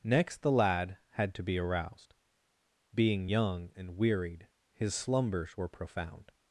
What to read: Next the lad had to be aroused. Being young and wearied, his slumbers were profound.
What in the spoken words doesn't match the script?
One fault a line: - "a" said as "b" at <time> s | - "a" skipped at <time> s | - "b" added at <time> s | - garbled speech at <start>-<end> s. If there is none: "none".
none